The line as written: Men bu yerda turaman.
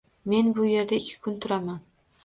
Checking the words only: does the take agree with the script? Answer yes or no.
no